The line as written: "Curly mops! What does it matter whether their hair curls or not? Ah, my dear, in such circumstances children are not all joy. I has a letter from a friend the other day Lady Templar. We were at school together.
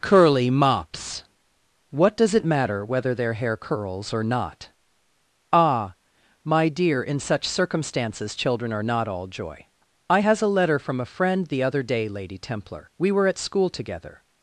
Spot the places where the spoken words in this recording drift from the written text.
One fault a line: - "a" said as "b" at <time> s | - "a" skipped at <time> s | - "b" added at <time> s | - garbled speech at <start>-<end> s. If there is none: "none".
none